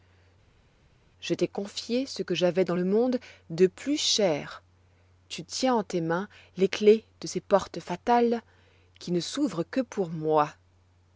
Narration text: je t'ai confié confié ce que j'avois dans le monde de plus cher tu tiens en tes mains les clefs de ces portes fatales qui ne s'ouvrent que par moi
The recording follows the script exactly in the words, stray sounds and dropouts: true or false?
false